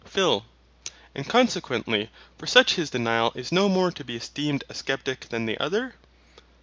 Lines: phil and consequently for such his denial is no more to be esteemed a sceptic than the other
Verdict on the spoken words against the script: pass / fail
pass